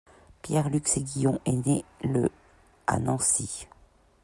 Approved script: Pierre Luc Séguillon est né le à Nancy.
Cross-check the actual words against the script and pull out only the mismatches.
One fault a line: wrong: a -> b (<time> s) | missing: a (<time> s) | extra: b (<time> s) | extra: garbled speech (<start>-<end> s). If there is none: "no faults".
no faults